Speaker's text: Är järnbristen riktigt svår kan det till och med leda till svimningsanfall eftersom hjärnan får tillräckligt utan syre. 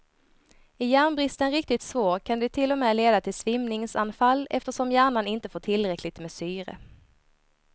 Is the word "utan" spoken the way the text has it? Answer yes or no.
no